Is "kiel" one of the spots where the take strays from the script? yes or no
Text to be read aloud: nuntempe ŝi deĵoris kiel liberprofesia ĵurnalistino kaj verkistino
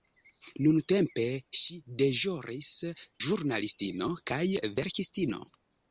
yes